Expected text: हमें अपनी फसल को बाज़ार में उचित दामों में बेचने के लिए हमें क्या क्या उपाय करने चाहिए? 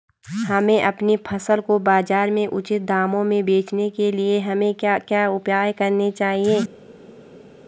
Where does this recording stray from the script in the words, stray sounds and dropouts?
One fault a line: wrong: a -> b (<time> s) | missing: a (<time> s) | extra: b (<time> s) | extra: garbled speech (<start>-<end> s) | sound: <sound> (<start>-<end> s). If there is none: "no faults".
no faults